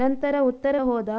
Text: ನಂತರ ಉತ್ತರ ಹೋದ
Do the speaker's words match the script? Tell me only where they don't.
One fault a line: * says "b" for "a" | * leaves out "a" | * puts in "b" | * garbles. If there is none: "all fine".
all fine